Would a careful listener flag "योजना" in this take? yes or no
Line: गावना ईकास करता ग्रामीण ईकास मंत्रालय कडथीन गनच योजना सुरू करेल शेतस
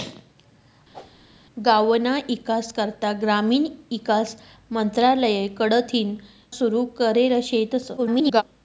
yes